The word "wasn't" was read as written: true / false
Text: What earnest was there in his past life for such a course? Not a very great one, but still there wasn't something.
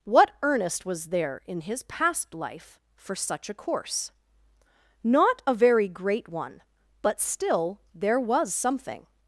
false